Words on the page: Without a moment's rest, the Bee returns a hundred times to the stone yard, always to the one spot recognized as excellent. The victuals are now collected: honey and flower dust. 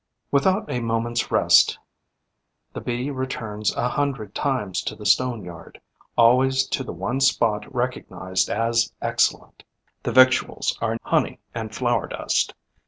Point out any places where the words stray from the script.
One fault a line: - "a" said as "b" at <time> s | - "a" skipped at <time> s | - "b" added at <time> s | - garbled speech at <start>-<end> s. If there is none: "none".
- "now collected" skipped at 11.0 s